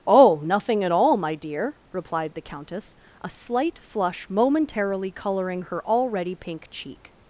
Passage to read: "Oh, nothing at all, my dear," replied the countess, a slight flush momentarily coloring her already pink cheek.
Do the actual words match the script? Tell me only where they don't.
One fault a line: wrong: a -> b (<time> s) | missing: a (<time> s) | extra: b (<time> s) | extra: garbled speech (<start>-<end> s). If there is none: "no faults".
no faults